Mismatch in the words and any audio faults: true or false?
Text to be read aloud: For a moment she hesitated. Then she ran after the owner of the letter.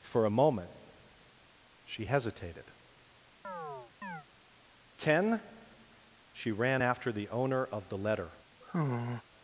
true